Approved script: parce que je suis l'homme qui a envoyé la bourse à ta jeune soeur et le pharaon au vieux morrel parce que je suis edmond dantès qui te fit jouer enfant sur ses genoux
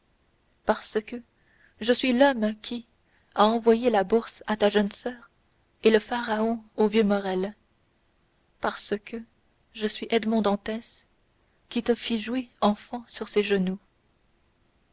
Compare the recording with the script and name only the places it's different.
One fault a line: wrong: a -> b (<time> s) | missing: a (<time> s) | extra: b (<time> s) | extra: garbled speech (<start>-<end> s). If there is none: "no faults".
no faults